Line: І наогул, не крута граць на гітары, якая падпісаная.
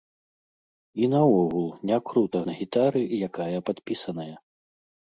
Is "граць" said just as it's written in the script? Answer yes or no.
no